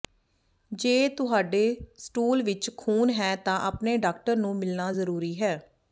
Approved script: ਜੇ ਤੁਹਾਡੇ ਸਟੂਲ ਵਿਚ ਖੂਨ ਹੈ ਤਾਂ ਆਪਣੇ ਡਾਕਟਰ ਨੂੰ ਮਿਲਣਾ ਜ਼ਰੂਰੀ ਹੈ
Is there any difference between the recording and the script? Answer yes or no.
no